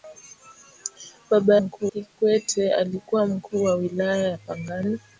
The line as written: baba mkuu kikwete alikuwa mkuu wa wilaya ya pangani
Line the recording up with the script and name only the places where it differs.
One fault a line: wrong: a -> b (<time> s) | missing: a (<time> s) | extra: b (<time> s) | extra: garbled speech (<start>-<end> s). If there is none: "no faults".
no faults